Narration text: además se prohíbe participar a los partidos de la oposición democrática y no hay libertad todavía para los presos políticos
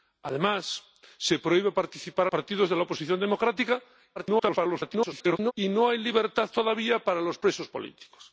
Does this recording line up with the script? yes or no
no